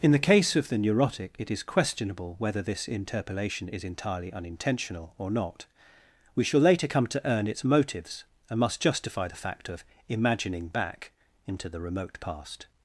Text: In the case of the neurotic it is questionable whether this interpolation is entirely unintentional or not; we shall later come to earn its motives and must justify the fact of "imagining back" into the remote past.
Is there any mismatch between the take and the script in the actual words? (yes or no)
no